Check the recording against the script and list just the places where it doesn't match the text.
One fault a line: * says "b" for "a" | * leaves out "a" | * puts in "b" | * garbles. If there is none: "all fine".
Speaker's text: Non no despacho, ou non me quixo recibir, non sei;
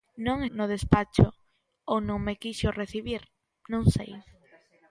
all fine